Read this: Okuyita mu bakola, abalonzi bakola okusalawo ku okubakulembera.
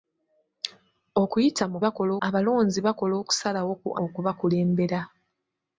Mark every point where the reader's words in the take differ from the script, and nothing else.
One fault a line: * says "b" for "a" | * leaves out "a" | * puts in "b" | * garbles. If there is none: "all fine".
all fine